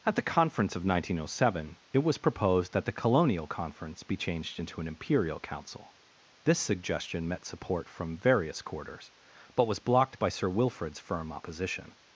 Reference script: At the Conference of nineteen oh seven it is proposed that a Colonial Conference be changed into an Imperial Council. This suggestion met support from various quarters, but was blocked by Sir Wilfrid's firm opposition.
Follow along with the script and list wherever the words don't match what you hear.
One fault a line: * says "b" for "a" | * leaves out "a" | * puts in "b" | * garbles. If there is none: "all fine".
* says "was" for "is"
* says "the" for "a"